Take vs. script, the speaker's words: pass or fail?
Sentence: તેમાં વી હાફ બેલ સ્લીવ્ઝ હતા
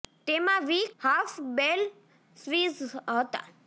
pass